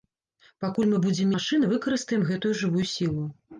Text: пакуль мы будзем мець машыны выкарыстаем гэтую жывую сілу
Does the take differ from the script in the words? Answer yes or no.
yes